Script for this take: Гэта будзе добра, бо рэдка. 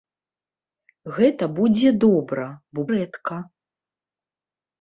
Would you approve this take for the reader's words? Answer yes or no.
yes